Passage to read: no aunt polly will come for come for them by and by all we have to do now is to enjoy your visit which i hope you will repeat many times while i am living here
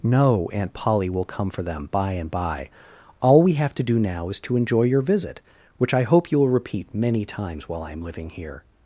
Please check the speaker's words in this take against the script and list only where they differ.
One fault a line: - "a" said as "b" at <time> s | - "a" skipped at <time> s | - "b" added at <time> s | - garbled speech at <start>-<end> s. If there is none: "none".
- "come for" skipped at 1.6 s